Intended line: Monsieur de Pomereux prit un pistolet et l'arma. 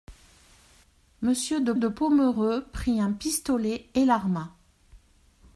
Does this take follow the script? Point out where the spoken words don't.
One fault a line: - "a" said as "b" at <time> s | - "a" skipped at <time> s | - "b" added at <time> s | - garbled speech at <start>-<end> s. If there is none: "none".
- "de" added at 1.8 s